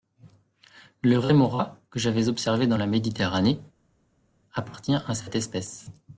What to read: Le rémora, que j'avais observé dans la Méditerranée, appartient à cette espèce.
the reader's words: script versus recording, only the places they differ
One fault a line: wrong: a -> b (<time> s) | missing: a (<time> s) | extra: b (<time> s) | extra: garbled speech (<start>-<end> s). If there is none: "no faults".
no faults